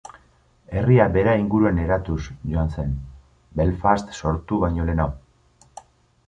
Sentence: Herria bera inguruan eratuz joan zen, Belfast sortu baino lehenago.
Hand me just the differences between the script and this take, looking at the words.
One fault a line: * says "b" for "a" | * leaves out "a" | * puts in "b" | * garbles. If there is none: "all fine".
all fine